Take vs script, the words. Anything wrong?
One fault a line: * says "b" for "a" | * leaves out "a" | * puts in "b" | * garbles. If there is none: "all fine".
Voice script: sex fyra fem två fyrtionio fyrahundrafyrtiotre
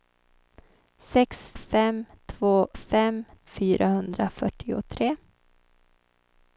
* leaves out "fyra"
* says "fem" for "fyrtionio"